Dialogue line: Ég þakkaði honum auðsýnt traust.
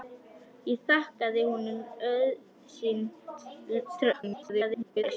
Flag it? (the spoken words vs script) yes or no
yes